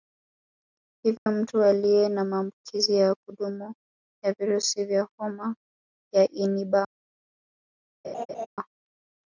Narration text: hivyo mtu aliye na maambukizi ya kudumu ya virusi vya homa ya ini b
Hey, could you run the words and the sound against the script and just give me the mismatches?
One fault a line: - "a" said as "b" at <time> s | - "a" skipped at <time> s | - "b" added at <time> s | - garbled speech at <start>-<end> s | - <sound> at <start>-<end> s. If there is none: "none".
- dropout at 1.2-1.3 s
- laugh at 8.0-8.5 s